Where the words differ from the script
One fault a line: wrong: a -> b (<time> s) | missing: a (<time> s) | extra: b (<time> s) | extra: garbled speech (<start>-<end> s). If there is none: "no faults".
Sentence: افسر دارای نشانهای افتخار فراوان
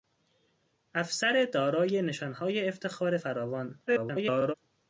extra: garbled speech (3.9-4.5 s)